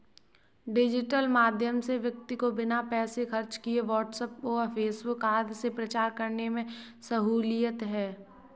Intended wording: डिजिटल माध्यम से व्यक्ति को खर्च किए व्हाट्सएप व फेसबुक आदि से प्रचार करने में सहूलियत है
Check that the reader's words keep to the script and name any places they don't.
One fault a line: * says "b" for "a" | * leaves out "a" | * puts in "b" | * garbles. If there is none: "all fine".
* puts in "बिना पैसे"